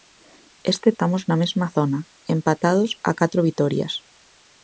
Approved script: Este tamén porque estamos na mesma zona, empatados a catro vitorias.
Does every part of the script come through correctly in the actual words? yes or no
no